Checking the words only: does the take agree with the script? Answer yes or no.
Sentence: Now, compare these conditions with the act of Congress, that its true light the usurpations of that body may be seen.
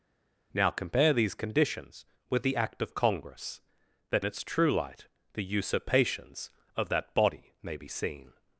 yes